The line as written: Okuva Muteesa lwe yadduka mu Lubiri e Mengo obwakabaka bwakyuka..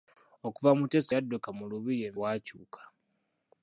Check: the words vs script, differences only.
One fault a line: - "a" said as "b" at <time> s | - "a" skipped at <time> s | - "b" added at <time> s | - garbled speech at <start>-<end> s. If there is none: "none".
- "lwe" skipped at 1.1 s
- "Mengo obwakabaka" skipped at 2.1 s